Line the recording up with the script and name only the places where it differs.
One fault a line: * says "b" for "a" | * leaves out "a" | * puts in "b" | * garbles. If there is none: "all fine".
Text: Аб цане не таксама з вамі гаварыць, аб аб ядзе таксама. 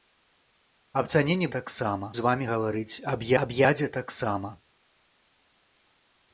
all fine